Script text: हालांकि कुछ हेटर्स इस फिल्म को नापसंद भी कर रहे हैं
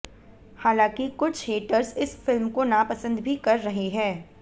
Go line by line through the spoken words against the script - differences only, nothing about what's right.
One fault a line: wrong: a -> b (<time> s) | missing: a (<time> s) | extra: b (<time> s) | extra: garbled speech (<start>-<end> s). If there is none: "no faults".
no faults